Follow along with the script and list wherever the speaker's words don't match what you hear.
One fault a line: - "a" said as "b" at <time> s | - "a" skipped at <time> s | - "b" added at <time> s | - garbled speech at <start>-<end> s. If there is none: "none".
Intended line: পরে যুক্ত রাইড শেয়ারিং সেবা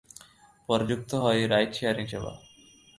- "হয়" added at 1.2 s